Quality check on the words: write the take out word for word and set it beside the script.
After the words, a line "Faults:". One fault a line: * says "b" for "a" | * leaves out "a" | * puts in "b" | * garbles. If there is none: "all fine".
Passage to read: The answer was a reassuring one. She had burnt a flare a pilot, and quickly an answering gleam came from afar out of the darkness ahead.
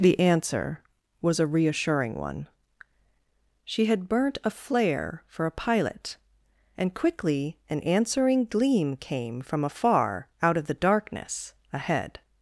The answer was a reassuring one. She had burnt a flare for a pilot, and quickly an answering gleam came from afar out of the darkness ahead.
Faults:
* puts in "for"